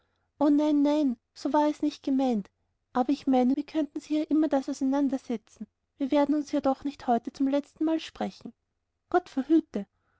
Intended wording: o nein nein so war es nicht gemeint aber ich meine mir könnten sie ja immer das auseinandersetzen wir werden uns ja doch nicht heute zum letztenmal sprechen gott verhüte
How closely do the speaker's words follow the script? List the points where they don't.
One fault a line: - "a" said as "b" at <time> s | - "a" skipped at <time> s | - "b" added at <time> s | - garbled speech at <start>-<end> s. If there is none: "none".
none